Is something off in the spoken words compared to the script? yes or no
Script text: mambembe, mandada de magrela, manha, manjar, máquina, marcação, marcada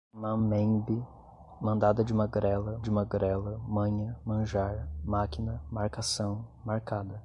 yes